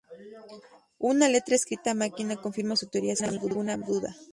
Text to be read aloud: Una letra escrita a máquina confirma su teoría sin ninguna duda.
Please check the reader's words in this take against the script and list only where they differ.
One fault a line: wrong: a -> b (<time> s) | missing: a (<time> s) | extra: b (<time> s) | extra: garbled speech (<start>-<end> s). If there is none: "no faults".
no faults